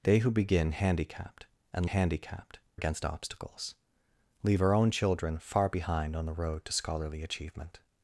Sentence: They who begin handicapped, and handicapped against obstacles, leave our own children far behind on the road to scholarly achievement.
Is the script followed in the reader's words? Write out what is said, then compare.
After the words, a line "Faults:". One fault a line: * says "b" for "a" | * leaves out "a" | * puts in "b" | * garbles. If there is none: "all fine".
They who begin handicapped, and handicapped against obstacles, leave our own children far behind on the road to scholarly achievement.
Faults:
all fine